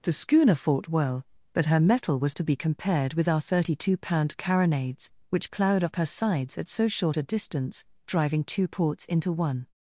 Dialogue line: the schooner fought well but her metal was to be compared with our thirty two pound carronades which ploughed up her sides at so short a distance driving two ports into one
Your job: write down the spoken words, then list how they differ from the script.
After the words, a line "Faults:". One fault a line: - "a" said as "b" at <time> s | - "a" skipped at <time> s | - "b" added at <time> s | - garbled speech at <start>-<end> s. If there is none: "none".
the schooner fought well but her metal was to be compared with our thirty two pound carronades which ploughed up her sides at so short a distance driving two ports into one
Faults:
none